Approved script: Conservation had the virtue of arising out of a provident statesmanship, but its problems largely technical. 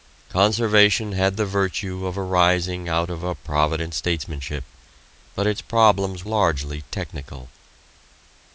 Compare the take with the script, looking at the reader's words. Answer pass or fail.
pass